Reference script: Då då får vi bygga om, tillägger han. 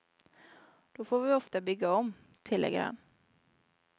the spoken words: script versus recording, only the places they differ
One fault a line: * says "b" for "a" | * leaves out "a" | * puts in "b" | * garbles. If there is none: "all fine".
* leaves out "då"
* puts in "ofta"